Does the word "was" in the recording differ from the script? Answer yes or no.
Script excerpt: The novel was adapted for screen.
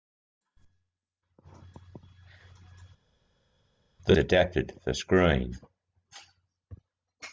yes